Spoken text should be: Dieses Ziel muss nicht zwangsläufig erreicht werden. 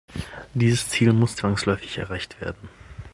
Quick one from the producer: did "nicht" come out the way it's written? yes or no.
no